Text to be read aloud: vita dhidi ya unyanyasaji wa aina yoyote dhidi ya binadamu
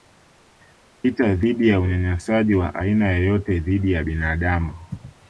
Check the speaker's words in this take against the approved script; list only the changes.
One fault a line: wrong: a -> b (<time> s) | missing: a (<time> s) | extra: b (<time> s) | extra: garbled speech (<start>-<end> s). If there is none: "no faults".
no faults